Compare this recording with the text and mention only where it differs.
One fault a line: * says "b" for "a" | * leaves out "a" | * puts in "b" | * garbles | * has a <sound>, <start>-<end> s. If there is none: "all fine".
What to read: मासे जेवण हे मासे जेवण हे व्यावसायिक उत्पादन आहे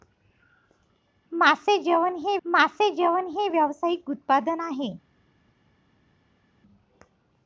all fine